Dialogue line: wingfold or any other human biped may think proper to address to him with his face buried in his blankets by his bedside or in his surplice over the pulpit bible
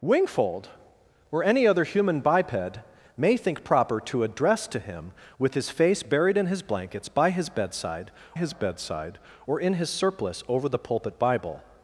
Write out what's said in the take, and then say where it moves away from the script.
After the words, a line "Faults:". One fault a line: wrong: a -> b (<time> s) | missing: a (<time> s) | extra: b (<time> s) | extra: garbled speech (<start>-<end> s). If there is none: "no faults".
wingfold or any other human biped may think proper to address to him with his face buried in his blankets by his bedside his bedside or in his surplice over the pulpit bible
Faults:
extra: his bedside (8.3 s)